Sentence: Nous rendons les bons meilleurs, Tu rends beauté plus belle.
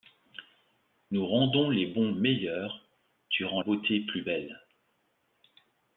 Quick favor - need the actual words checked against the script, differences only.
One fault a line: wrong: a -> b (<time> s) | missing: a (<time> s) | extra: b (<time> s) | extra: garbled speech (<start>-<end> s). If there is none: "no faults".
no faults